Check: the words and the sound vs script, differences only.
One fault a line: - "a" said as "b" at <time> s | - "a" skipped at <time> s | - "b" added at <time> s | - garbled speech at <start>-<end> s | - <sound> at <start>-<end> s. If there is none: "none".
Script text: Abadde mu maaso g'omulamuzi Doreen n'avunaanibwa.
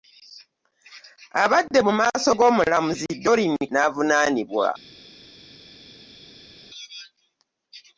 none